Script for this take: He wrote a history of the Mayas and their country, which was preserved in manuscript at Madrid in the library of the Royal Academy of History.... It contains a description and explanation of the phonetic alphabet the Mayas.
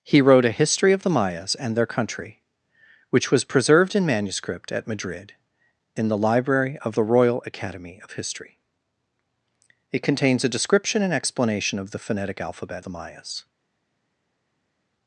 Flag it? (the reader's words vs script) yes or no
no